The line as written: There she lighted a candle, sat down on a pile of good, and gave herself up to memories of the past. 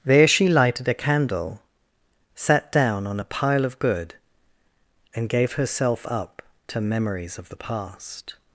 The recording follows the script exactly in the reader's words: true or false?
true